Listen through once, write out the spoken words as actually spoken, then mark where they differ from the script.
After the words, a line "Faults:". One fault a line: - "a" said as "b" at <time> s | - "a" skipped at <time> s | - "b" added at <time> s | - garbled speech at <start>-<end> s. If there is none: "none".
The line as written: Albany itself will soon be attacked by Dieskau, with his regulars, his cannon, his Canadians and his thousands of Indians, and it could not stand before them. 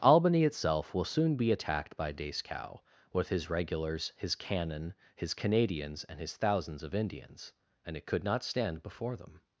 Albany itself will soon be attacked by Dieskau, with his regulars, his cannon, his Canadians and his thousands of Indians, and it could not stand before them.
Faults:
none